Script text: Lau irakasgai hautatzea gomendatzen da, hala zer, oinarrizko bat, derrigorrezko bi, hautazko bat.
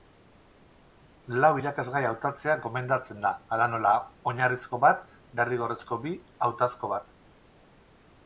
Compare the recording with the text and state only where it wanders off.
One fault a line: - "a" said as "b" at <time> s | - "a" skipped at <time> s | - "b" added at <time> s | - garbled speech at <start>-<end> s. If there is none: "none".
- "zer" said as "nola" at 3.7 s